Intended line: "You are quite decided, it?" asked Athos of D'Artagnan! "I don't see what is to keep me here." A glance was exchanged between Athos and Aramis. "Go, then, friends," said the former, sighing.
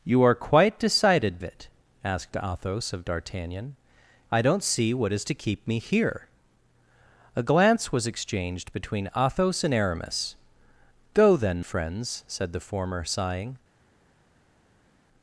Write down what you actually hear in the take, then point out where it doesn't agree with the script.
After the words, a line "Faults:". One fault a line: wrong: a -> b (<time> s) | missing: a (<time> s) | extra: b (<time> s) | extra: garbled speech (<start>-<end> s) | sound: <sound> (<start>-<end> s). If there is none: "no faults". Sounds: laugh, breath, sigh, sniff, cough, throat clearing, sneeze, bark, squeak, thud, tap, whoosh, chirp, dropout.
"You are quite decided, it?" asked Athos of D'Artagnan! "I don't see what is to keep me here." A glance was exchanged between Athos and Aramis. "Go, then, friends," said the former, sighing.
Faults:
no faults